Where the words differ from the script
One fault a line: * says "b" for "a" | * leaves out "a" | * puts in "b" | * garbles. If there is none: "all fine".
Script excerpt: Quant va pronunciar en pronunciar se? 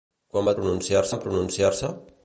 all fine